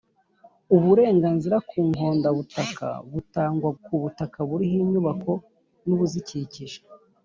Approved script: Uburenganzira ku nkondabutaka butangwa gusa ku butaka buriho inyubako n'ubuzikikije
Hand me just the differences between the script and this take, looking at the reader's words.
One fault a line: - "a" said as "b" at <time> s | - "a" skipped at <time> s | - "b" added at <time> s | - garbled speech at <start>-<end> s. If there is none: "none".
- "gusa" skipped at 3.7 s